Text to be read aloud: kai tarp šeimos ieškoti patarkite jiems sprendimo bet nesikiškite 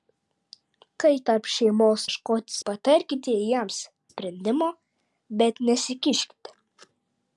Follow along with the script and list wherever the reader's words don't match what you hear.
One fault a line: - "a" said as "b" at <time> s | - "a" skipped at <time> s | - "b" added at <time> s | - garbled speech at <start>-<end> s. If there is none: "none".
none